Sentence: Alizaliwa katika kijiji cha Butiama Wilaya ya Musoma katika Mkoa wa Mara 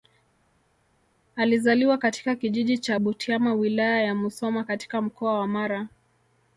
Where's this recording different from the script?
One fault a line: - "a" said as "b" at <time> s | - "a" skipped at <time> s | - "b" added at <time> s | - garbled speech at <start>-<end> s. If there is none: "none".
none